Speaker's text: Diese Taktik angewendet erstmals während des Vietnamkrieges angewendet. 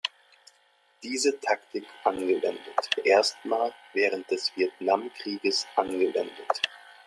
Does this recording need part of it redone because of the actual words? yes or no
no